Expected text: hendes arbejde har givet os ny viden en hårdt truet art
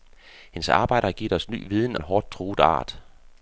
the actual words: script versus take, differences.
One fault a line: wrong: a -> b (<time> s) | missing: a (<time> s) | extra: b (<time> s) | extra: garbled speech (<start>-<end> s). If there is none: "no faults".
no faults